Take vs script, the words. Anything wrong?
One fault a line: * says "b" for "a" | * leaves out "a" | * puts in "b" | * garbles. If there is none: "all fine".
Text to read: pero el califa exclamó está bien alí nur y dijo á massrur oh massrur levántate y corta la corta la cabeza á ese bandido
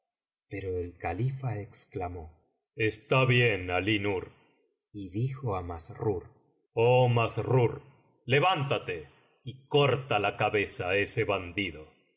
* leaves out "corta la"